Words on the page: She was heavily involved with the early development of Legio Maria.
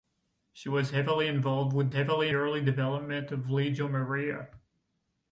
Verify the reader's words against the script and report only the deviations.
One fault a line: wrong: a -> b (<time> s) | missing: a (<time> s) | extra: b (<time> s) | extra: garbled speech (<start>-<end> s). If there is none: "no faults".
wrong: the -> heavily (1.9 s)